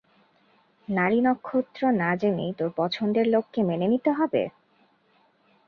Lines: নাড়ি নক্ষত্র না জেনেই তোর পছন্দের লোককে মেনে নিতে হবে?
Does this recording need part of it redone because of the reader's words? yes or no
no